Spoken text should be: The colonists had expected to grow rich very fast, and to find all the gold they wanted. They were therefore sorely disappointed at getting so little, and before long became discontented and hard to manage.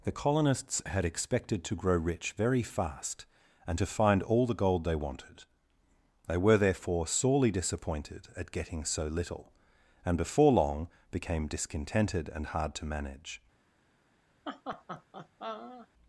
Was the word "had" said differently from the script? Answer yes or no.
no